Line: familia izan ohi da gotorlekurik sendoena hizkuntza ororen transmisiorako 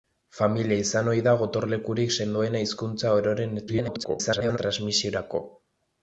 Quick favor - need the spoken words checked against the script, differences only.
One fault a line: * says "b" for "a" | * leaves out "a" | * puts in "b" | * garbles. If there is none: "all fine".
* garbles